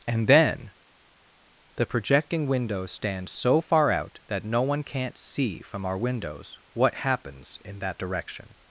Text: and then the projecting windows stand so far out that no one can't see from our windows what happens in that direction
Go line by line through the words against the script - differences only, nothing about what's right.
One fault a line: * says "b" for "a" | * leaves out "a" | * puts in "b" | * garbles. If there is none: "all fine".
all fine